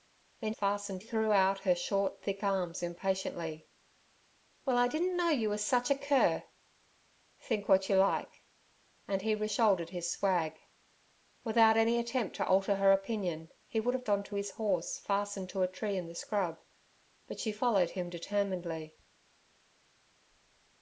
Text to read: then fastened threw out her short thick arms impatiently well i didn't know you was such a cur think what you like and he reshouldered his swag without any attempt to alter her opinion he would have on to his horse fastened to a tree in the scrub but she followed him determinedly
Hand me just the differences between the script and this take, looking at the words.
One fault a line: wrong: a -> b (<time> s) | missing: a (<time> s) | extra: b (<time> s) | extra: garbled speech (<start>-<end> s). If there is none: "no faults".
no faults